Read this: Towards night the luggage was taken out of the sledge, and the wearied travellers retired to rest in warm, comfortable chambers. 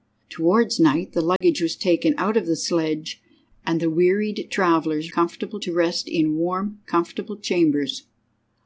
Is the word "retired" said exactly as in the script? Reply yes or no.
no